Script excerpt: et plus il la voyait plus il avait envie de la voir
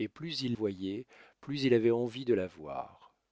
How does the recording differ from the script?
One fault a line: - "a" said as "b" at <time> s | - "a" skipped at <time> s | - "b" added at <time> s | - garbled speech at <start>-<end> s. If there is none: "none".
- "la" skipped at 0.6 s